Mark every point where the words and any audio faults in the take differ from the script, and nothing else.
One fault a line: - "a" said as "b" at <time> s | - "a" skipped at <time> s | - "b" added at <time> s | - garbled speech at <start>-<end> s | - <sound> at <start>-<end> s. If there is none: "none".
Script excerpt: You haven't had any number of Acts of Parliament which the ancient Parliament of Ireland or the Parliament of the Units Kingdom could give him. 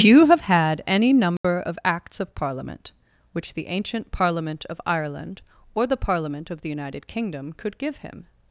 - "haven't" said as "have" at 0.2 s
- dropout at 1.4-1.4 s
- "Units" said as "United" at 6.7 s